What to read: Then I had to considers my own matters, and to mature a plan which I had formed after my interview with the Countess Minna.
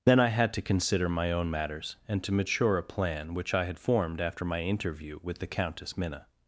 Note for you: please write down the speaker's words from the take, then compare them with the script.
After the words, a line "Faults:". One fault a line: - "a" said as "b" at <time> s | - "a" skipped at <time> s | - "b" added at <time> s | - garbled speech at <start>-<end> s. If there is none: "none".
Then I had to consider my own matters, and to mature a plan which I had formed after my interview with the Countess Minna.
Faults:
- "considers" said as "consider" at 0.6 s